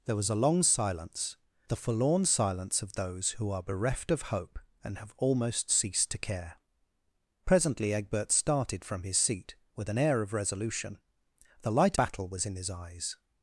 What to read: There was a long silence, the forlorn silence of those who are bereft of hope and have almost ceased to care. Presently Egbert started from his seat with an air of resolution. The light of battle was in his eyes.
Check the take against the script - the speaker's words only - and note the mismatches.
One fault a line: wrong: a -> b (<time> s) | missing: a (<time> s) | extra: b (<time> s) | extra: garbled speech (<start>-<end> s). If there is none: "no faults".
missing: of (12.0 s)